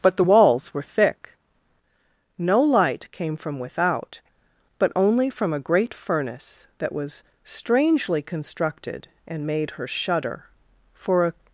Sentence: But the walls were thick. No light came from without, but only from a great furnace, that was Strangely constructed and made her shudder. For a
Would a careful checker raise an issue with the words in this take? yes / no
no